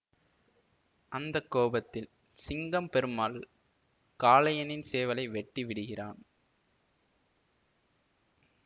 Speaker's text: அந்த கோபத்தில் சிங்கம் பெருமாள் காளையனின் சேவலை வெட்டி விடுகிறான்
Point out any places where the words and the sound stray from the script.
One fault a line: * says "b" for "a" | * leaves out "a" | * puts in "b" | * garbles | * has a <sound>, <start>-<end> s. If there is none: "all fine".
all fine